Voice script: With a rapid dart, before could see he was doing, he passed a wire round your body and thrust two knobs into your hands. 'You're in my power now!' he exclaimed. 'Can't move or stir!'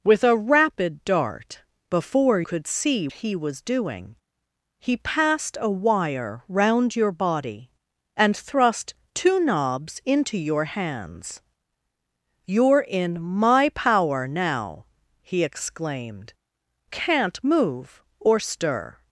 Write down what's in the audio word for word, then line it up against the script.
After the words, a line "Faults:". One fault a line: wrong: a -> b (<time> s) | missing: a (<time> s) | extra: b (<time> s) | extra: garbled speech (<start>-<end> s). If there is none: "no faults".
With a rapid dart, before could see he was doing, he passed a wire round your body and thrust two knobs into your hands. 'You're in my power now!' he exclaimed. 'Can't move or stir!'
Faults:
no faults